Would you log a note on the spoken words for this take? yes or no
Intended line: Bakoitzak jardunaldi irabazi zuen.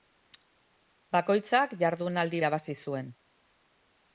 no